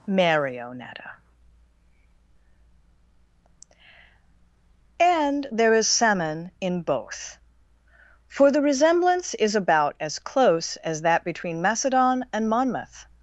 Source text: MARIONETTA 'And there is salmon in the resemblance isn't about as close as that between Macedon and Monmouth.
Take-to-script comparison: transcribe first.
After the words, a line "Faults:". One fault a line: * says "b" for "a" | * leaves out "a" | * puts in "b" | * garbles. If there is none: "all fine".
MARIONETTA 'And there is salmon in both;' for the resemblance is about as close as that between Macedon and Monmouth.
Faults:
* puts in "both for"
* says "is" for "isn't"